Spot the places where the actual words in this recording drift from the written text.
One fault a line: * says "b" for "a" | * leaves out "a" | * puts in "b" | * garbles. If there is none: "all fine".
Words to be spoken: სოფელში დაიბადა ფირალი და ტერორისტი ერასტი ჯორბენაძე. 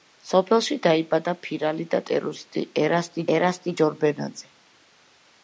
* puts in "ერასტი"